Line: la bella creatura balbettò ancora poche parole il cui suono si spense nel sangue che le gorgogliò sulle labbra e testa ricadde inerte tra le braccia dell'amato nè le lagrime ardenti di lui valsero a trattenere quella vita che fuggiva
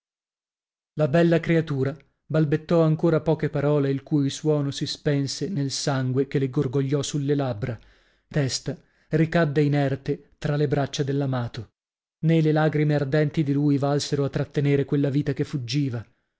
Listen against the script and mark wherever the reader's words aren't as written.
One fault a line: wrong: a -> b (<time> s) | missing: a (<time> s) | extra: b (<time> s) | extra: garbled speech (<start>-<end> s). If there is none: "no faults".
no faults